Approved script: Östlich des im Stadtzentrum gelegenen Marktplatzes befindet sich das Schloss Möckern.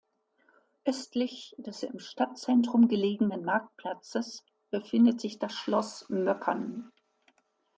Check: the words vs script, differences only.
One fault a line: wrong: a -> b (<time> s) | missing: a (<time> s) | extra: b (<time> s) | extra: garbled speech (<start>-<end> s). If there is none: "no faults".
no faults